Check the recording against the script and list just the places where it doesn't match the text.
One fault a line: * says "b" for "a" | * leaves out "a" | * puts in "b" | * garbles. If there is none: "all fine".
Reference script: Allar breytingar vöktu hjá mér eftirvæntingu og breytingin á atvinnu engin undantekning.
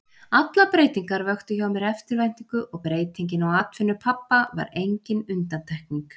* puts in "pabba var"